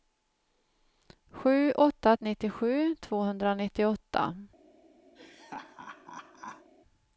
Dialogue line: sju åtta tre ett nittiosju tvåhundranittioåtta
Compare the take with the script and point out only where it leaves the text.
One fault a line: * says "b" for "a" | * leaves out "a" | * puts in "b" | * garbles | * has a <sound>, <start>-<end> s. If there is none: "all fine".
* leaves out "tre ett"
* has a laugh, 5.2-6.7 s